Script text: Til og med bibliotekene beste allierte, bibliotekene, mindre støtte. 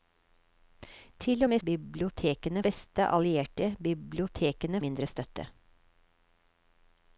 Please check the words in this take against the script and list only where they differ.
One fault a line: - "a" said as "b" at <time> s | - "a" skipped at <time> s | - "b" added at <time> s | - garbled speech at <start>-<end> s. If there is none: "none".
none